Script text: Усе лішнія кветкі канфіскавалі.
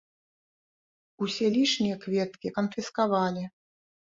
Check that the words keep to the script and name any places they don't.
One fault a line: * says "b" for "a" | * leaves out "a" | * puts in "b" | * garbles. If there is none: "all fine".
all fine